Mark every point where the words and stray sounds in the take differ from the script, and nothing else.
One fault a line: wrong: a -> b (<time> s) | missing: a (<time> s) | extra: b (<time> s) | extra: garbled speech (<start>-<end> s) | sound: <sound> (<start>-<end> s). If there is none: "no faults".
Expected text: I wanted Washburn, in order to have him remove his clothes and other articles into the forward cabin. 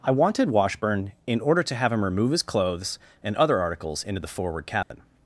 sound: dropout (4.8-4.9 s)